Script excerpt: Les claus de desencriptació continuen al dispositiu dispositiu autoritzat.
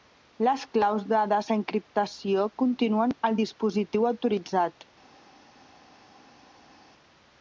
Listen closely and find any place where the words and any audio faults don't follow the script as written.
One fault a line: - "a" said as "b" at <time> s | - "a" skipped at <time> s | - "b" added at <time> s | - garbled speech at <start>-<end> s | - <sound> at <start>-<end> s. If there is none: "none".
- "dispositiu" skipped at 4.1 s